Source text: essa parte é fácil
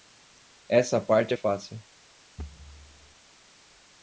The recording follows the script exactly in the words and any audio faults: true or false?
false